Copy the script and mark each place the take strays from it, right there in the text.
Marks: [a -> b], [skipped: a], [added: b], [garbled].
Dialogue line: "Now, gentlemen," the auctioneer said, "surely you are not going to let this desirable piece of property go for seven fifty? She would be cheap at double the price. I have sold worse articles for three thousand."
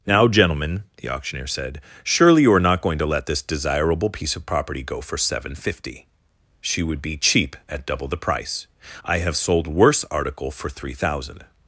"Now, gentlemen," the auctioneer said, "surely you are not going to let this desirable piece of property go for seven fifty? She would be cheap at double the price. I have sold worse [articles -> article] for three thousand."